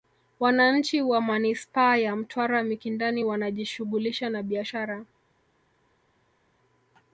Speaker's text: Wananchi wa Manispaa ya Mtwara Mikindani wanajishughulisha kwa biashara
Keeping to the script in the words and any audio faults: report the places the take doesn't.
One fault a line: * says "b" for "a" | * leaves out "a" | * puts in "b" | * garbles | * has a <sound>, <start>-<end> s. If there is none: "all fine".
* says "na" for "kwa"